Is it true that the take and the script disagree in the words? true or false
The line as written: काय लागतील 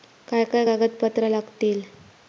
true